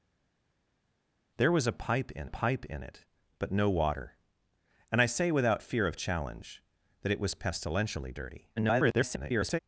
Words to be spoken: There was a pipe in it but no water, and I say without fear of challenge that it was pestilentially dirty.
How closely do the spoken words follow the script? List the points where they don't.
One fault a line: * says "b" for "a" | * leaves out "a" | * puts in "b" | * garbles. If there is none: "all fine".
* puts in "pipe in"
* garbles